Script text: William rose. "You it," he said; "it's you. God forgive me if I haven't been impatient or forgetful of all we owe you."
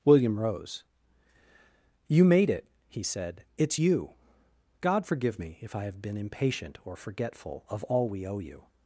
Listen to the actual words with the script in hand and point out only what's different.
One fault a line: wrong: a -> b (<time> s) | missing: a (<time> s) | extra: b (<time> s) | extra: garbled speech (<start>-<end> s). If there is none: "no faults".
extra: made (2.2 s)
wrong: haven't -> have (5.8 s)